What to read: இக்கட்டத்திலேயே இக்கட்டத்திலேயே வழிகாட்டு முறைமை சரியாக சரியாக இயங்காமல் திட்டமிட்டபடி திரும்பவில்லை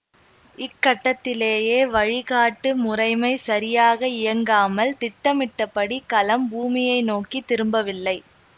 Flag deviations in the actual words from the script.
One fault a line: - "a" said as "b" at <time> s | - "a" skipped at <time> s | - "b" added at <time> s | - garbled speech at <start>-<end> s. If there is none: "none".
- "இக்கட்டத்திலேயே" skipped at 1.8 s
- "சரியாக" skipped at 4.1 s
- "கலம் பூமியை நோக்கி" added at 6.1 s